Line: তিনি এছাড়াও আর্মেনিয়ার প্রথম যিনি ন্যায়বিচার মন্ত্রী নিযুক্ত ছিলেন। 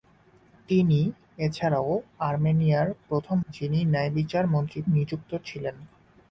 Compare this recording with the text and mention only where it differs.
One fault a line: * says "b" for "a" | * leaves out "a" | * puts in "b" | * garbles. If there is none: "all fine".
all fine